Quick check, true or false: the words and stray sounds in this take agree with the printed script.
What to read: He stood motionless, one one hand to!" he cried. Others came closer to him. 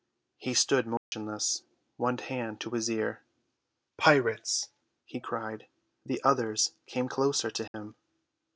false